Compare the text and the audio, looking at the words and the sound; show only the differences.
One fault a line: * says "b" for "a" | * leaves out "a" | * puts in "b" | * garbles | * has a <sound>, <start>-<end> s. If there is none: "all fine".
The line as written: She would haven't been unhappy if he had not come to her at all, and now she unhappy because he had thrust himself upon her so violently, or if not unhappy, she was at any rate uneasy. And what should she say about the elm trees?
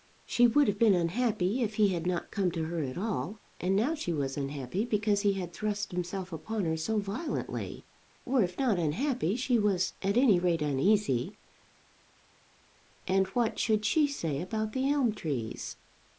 * says "have" for "haven't"
* puts in "was"